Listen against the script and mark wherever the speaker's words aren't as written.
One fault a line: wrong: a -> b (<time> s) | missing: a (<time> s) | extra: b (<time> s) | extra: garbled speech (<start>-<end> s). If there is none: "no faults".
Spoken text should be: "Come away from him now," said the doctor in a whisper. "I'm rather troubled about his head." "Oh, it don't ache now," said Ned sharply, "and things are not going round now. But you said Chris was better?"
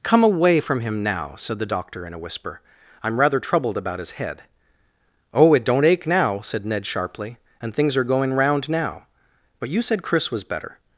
missing: not (8.0 s)